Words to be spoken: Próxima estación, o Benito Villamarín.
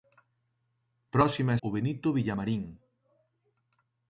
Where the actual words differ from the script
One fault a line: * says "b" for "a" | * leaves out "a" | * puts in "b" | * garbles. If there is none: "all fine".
* leaves out "estación"